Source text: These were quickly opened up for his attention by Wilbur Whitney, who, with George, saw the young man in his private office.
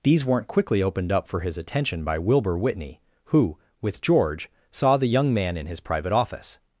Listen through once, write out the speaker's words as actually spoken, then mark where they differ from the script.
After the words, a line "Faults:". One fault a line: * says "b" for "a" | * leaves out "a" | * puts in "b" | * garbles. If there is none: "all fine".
These weren't quickly opened up for his attention by Wilbur Whitney, who, with George, saw the young man in his private office.
Faults:
* says "weren't" for "were"